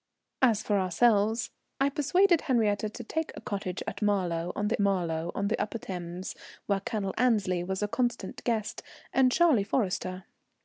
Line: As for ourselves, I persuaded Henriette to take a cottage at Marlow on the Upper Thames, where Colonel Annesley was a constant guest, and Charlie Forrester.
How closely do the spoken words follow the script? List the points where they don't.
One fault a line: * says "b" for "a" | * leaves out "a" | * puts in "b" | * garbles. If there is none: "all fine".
* puts in "Marlow on the"